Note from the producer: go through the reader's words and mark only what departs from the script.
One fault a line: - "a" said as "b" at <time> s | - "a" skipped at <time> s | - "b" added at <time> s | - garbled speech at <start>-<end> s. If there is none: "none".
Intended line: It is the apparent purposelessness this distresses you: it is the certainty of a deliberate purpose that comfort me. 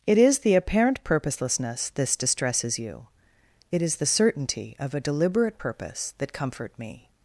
none